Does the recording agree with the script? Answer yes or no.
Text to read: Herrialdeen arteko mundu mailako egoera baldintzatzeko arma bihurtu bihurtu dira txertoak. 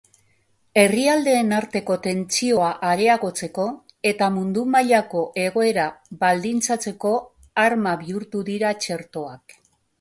no